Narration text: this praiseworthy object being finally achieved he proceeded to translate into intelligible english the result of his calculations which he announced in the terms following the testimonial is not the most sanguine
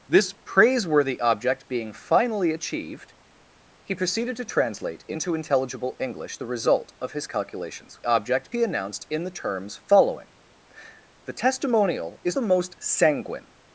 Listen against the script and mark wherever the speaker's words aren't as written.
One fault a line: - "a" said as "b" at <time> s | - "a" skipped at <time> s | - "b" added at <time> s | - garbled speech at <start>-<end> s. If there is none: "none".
- "which" said as "object" at 8.1 s
- "not" skipped at 12.4 s